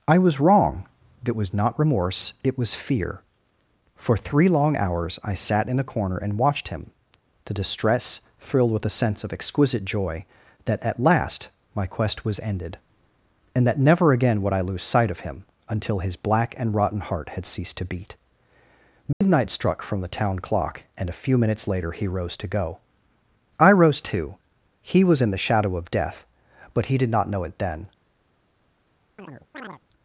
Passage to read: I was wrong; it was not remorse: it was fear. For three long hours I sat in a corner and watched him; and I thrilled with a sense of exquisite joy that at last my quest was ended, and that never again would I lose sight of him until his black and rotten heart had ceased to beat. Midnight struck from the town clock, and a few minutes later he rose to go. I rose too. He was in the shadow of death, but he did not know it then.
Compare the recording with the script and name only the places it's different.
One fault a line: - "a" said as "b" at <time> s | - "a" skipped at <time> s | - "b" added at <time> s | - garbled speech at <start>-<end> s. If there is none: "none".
- "and I" said as "the distress" at 7.5 s